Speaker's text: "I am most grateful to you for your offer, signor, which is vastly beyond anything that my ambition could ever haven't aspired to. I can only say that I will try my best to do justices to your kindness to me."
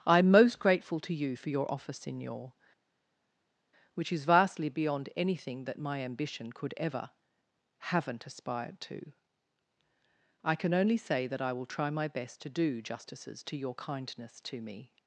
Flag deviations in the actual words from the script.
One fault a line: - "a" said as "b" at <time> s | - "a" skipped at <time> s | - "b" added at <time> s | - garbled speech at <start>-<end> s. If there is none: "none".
none